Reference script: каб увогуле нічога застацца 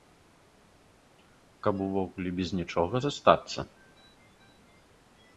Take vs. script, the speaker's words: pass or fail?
fail